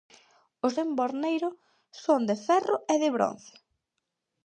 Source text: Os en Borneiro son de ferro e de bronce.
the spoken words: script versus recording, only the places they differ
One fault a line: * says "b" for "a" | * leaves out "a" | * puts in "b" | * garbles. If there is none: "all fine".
all fine